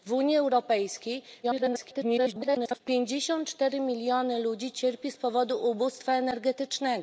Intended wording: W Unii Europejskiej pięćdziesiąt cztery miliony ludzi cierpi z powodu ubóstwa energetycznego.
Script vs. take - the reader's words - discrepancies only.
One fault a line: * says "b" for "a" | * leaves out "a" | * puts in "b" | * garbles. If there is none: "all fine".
* garbles